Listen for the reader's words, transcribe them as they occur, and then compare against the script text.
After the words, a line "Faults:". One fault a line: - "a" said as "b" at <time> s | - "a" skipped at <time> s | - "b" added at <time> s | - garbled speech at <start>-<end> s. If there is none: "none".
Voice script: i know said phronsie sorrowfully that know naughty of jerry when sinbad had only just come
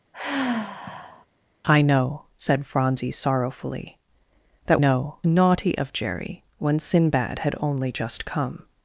i know said phronsie sorrowfully that know naughty of jerry when sinbad had only just come
Faults:
none